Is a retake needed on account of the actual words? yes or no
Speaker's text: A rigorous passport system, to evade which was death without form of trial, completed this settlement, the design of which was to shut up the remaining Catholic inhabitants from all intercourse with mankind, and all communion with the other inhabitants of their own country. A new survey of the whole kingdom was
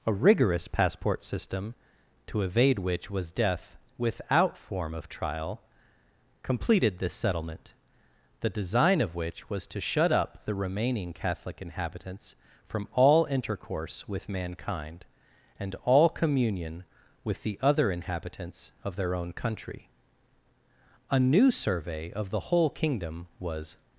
no